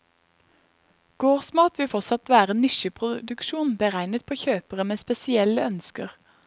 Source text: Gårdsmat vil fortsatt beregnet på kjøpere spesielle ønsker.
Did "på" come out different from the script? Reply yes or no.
no